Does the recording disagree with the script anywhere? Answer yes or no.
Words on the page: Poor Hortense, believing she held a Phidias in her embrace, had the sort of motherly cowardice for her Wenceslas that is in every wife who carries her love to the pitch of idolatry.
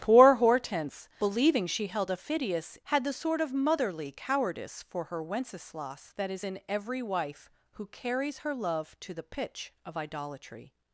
yes